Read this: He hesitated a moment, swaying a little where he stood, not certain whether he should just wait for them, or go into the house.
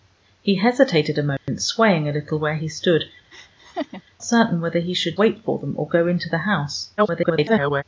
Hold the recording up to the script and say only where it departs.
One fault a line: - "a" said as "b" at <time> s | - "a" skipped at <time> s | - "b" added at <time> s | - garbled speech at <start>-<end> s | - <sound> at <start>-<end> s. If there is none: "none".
- dropout at 1.4-1.5 s
- "not" skipped at 3.0 s
- laugh at 3.3-4.0 s
- "just" skipped at 5.2 s
- garbled speech at 7.0-7.8 s